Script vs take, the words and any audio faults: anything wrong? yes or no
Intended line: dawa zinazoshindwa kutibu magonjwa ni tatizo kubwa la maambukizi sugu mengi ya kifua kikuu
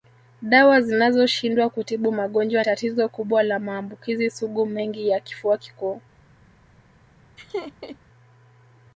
yes